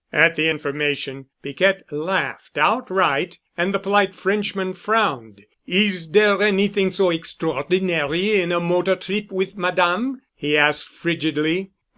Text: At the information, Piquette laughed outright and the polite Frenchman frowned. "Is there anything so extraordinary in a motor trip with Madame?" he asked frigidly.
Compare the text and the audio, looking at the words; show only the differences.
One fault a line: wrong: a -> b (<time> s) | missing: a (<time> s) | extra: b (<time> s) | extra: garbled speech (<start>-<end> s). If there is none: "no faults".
no faults